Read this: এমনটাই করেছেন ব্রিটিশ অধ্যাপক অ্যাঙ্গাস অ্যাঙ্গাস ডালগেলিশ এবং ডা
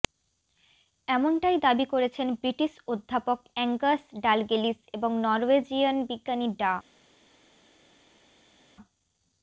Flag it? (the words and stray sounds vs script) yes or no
yes